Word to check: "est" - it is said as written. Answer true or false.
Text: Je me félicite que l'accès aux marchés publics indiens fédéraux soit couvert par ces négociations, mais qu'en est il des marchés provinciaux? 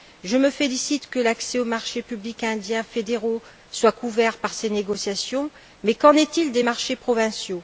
true